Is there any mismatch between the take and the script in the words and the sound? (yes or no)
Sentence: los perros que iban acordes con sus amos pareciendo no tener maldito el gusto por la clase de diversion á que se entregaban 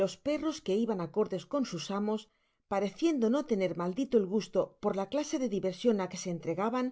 no